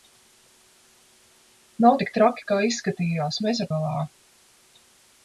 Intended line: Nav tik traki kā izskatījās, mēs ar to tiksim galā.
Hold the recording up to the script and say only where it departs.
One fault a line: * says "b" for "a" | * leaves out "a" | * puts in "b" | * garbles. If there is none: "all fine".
* leaves out "to tiksim"